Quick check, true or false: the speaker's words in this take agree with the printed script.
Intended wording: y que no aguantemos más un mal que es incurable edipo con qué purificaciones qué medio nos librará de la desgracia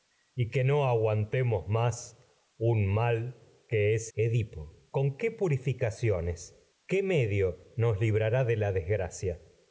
false